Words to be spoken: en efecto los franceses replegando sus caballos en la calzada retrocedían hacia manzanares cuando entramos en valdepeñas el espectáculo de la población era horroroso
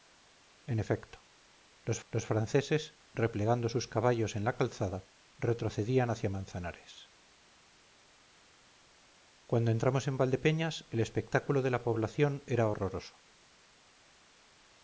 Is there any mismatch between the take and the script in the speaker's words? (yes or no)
yes